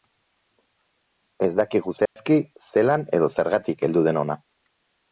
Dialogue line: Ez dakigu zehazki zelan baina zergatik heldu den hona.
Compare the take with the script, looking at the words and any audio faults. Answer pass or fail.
fail